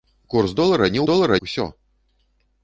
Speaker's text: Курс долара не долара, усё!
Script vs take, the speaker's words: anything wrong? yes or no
no